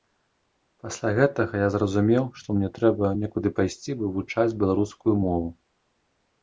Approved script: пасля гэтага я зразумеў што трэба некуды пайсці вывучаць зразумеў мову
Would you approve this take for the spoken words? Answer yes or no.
no